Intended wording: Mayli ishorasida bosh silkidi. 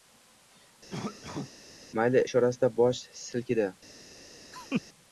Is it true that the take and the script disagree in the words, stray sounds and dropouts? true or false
true